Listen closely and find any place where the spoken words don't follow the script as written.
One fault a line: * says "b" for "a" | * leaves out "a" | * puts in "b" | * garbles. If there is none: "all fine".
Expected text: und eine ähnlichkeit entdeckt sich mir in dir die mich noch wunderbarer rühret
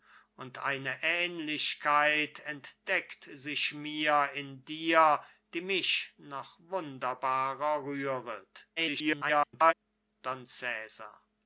* garbles